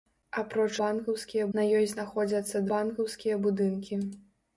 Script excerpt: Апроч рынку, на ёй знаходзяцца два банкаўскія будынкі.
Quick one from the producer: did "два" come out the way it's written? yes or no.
no